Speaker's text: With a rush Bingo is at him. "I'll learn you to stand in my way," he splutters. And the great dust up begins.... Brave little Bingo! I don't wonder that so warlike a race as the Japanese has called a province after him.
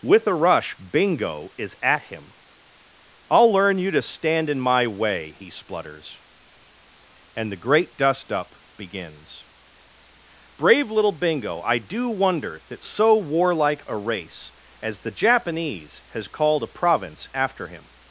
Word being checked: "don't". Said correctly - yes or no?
no